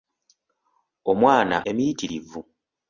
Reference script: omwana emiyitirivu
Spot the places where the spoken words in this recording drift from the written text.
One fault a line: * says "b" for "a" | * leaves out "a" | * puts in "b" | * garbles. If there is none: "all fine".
all fine